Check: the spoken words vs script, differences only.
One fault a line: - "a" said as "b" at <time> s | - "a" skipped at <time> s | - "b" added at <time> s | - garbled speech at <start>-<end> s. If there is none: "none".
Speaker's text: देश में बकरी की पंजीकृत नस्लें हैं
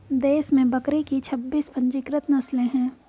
- "छब्बीस" added at 1.2 s